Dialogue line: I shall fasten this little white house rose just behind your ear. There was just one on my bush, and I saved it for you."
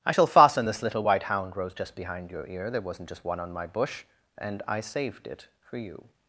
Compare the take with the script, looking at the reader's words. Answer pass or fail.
fail